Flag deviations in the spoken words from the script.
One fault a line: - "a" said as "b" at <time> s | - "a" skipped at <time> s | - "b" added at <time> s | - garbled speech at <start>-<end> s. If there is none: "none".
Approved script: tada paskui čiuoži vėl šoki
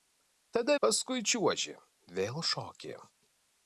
none